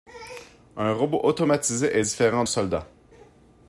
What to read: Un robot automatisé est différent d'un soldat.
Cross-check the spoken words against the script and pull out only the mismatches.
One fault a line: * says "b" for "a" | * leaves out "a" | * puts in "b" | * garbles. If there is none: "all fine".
* leaves out "d'un"